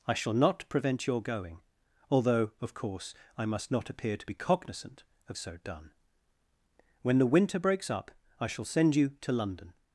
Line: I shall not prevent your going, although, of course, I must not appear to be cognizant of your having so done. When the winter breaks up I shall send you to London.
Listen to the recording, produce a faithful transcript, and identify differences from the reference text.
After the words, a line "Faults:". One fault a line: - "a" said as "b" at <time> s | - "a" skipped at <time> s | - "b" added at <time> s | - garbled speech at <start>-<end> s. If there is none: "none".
I shall not prevent your going, although, of course, I must not appear to be cognizant of so done. When the winter breaks up I shall send you to London.
Faults:
- "your having" skipped at 5.4 s